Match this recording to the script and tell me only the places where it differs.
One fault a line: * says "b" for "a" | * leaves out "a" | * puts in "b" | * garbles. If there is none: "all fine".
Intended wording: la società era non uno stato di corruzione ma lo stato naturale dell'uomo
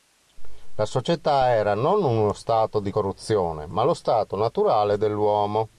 all fine